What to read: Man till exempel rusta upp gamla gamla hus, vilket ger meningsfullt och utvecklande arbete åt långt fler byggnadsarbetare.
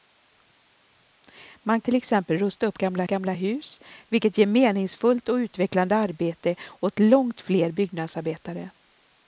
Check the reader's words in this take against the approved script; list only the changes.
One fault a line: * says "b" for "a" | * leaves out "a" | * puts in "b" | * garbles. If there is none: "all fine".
all fine